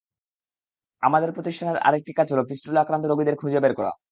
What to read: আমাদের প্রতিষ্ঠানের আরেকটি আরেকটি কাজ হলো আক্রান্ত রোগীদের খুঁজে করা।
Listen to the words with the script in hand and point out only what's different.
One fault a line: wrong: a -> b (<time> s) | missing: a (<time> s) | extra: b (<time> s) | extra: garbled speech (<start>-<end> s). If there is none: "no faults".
missing: আরেকটি (2.1 s)
extra: ফিস্টুলা (2.5 s)
extra: বের (3.6 s)